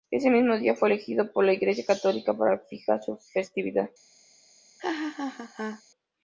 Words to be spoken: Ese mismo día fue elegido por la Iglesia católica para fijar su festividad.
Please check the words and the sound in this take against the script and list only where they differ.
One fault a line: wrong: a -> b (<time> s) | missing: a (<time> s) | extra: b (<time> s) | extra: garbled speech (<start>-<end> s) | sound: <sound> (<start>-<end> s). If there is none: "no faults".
sound: laugh (4.8-5.8 s)